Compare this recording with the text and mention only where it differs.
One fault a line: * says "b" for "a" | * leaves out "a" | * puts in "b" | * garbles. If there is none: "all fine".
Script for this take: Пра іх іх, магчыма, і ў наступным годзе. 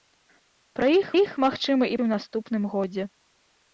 all fine